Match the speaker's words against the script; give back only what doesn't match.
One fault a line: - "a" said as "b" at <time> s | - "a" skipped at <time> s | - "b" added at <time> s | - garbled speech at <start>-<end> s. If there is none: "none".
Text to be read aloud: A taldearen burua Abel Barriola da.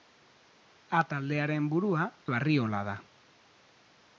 - "Abel" skipped at 2.1 s